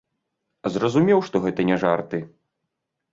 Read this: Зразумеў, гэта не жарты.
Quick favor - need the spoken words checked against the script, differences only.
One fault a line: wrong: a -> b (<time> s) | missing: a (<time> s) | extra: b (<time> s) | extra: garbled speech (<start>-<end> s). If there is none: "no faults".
extra: што (1.3 s)